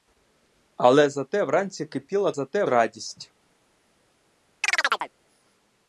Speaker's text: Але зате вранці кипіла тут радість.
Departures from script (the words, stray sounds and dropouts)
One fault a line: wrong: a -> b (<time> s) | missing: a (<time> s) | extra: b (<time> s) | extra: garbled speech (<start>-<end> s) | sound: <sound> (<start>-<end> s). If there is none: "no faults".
wrong: тут -> зате (2.3 s)
sound: chirp (4.6-5.1 s)